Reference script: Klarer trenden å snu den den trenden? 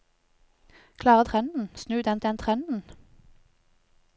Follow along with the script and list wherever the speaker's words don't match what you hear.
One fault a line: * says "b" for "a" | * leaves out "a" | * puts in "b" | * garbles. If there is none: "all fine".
all fine